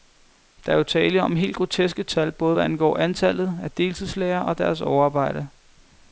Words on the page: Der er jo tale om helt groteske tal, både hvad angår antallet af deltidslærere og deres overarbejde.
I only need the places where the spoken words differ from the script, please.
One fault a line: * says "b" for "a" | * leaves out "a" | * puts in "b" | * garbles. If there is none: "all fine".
all fine